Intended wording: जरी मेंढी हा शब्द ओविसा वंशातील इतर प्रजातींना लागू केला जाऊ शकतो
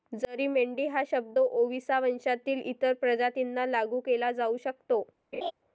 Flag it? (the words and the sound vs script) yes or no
yes